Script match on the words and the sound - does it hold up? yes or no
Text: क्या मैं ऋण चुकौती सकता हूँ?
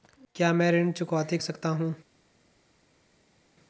yes